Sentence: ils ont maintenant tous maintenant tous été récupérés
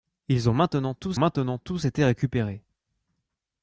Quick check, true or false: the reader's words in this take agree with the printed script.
true